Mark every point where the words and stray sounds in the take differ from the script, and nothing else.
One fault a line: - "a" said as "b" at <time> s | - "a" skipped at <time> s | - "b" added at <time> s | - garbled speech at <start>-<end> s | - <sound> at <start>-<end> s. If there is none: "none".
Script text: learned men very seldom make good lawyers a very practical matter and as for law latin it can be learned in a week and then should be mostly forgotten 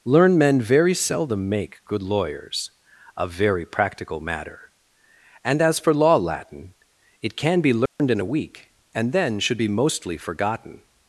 - dropout at 7.9-8.0 s